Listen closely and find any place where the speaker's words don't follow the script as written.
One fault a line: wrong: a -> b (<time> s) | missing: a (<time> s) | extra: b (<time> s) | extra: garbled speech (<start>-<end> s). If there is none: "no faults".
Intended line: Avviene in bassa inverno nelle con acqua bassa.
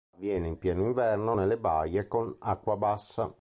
wrong: bassa -> pieno (0.6 s)
extra: baie (1.6 s)